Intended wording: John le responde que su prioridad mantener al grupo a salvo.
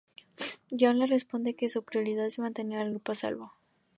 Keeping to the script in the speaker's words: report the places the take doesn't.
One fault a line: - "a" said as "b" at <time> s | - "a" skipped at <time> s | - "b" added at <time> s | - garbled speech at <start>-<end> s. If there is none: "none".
- "es" added at 2.2 s